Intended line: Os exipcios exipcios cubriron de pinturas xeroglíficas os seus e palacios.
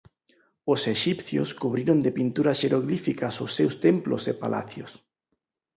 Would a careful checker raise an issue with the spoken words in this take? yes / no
yes